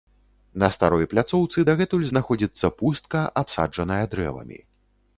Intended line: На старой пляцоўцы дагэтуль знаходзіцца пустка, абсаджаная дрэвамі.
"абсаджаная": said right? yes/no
yes